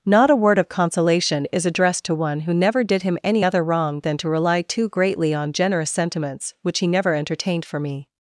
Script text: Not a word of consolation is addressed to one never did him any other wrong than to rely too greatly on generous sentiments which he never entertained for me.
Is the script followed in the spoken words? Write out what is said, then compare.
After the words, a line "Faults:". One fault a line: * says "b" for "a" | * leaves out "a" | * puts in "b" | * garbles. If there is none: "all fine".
Not a word of consolation is addressed to one who never did him any other wrong than to rely too greatly on generous sentiments which he never entertained for me.
Faults:
* puts in "who"